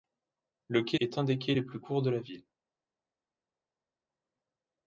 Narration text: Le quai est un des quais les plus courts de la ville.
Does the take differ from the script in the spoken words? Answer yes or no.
no